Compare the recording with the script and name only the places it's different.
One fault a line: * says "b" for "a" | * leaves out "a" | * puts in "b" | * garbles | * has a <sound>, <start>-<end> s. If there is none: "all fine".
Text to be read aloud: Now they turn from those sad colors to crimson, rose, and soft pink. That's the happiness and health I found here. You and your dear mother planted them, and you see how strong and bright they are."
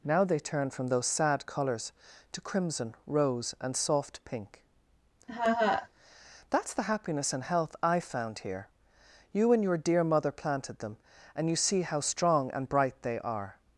* has a laugh, 5.3-5.9 s